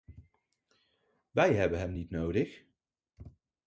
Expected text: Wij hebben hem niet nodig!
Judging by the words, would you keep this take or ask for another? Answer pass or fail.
pass